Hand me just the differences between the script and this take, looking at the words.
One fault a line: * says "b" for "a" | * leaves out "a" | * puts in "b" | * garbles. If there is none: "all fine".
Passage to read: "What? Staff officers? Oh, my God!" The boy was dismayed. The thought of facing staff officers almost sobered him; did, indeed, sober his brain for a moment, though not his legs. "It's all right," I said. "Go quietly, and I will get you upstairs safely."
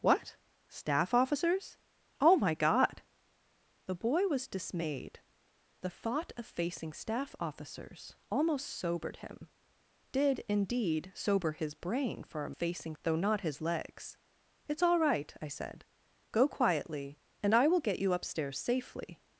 * says "facing" for "moment"